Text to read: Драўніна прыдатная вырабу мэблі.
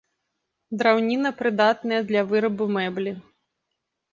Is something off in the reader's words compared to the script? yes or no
yes